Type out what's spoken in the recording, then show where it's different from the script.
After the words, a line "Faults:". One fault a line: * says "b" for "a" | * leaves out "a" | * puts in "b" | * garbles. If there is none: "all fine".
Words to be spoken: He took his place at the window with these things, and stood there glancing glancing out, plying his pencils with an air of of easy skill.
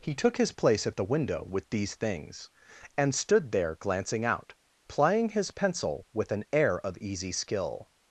He took his place at the window with these things, and stood there glancing out, plying his pencil with an air of easy skill.
Faults:
* leaves out "glancing"
* says "pencil" for "pencils"
* leaves out "of"